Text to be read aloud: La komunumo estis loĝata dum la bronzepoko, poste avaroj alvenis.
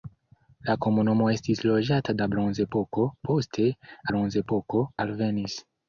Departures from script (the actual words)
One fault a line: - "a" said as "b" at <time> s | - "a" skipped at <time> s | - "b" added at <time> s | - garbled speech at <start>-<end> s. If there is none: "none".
- "dum" skipped at 2.2 s
- "avaroj" said as "bronzepoko" at 4.1 s